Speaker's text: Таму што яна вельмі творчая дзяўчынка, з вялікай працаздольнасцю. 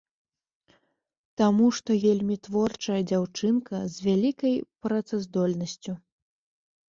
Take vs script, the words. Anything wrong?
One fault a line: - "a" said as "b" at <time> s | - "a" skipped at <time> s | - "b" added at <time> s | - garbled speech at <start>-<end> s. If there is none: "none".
- "яна" skipped at 2.0 s